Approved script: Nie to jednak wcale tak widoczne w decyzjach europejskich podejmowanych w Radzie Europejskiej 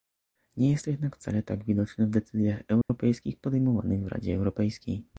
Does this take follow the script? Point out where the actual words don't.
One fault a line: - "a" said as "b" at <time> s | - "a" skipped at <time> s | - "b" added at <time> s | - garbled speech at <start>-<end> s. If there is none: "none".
- "jest" added at 0.7 s